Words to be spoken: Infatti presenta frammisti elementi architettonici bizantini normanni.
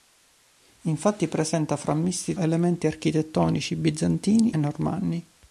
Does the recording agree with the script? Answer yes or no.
yes